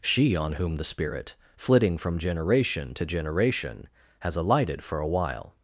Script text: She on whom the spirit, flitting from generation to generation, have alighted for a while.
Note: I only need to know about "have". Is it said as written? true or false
false